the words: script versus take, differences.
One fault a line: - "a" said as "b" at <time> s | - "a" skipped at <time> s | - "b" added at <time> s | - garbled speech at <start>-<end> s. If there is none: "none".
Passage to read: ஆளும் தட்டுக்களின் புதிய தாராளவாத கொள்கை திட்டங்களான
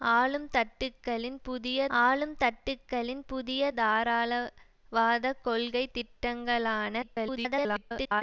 - "ஆளும் தட்டுக்களின் புதிய" added at 2.0 s
- garbled speech at 7.0-8.2 s